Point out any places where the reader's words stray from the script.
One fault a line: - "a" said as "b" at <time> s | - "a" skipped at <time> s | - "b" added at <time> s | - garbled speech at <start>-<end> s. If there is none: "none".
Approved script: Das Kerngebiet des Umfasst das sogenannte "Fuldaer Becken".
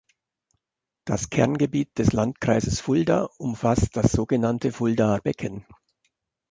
- "Landkreises Fulda" added at 2.1 s